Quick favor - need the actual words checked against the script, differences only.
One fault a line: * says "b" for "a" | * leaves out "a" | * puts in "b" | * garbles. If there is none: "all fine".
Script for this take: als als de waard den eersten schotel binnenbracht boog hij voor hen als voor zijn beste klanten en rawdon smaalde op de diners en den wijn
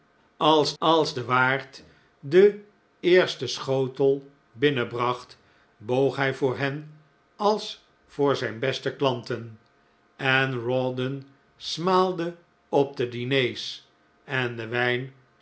all fine